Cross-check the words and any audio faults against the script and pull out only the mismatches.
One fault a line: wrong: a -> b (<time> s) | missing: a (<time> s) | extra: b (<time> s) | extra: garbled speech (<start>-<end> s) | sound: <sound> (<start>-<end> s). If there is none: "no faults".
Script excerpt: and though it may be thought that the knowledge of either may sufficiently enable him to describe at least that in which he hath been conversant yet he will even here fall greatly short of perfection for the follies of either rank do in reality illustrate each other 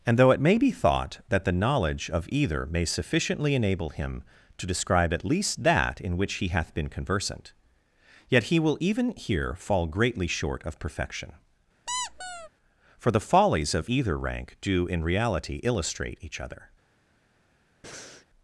sound: squeak (11.9-12.5 s)
sound: breath (17.8-18.3 s)